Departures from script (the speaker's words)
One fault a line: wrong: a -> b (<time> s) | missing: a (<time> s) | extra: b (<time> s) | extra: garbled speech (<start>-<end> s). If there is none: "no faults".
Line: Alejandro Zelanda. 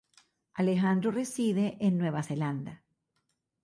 extra: reside en Nueva (1.1 s)